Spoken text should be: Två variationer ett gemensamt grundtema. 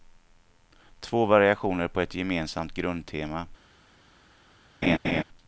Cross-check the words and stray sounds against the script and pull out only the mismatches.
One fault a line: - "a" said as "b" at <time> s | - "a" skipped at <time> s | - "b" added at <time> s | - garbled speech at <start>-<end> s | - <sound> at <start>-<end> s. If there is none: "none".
- "på" added at 1.9 s
- laugh at 4.8-5.2 s